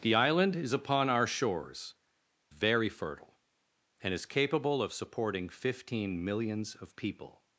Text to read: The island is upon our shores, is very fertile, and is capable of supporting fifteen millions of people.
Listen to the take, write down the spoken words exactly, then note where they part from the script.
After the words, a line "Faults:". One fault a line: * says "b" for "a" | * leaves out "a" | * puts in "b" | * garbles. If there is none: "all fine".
The island is upon our shores, very fertile, and is capable of supporting fifteen millions of people.
Faults:
* leaves out "is"